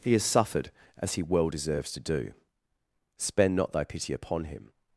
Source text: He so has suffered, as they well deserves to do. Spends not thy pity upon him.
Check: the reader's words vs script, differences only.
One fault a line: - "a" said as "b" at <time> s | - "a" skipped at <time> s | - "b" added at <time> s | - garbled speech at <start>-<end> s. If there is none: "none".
- "so" skipped at 0.1 s
- "they" said as "he" at 1.1 s
- "Spends" said as "Spend" at 3.2 s